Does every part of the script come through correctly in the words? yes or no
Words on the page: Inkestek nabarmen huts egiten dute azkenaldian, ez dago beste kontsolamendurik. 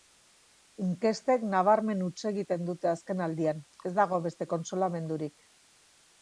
yes